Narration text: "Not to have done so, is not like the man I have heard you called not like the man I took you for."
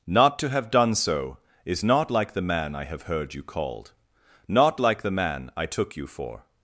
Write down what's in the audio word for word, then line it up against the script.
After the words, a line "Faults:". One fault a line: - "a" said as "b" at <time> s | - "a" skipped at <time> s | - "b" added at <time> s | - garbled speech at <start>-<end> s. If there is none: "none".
"Not to have done so, is not like the man I have heard you called not like the man I took you for."
Faults:
none